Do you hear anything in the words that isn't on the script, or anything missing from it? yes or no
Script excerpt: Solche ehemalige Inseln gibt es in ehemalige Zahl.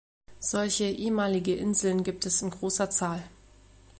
yes